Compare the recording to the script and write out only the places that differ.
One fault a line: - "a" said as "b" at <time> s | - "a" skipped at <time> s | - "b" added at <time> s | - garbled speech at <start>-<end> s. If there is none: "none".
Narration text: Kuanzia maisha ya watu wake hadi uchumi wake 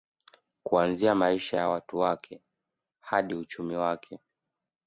none